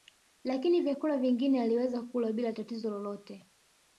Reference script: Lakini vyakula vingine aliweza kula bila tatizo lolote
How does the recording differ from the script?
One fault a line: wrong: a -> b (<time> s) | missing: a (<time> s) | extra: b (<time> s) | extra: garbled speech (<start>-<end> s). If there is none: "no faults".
no faults